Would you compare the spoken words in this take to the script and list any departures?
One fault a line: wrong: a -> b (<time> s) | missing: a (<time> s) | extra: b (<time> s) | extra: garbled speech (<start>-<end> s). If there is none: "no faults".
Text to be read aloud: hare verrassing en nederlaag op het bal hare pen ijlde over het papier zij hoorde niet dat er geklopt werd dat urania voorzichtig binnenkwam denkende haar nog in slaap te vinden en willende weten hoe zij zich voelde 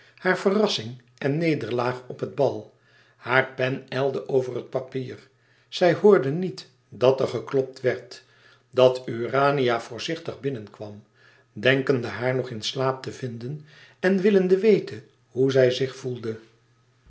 no faults